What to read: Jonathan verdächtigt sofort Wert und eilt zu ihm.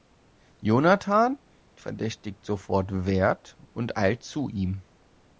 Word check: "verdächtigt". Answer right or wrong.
right